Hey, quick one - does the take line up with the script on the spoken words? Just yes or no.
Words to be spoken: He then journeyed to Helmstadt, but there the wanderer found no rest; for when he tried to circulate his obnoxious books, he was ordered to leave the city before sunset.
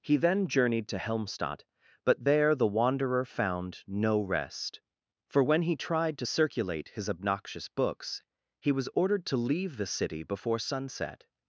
yes